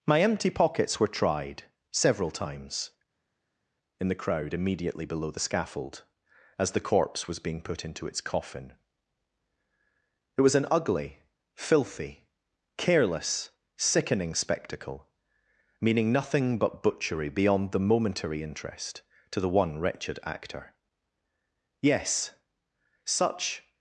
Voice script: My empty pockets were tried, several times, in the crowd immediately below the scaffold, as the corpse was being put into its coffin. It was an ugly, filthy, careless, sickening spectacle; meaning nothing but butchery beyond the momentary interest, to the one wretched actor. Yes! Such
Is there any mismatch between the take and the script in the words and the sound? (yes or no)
no